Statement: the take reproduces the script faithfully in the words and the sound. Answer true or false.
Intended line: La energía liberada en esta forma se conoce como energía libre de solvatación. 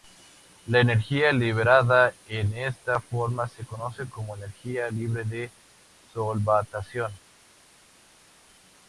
true